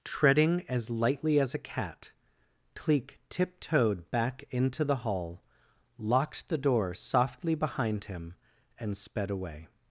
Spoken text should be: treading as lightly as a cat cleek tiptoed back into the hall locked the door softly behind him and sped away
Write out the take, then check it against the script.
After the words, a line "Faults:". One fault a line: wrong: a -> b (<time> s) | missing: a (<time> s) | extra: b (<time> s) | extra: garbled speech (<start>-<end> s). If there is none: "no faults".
treading as lightly as a cat cleek tiptoed back into the hall locked the door softly behind him and sped away
Faults:
no faults